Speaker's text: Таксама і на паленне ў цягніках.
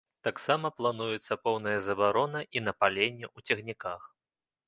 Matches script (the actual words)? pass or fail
fail